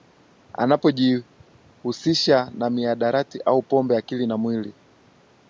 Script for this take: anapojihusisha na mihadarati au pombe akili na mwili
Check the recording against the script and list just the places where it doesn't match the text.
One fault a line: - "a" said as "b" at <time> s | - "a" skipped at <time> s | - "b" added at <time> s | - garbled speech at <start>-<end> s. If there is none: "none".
none